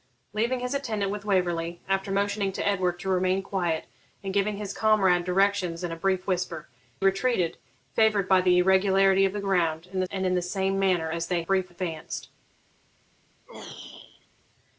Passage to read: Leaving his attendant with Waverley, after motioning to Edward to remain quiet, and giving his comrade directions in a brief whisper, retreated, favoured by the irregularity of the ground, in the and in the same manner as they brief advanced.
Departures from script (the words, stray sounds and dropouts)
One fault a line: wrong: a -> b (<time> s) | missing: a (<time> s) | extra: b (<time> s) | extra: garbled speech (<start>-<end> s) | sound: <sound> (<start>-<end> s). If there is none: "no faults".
sound: throat clearing (13.5-14.3 s)